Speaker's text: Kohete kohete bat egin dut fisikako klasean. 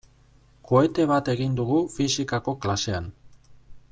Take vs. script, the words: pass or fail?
fail